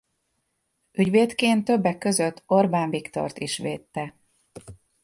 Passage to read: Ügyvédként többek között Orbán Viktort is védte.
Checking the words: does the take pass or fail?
pass